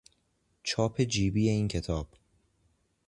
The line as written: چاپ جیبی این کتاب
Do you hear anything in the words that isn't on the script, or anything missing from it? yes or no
no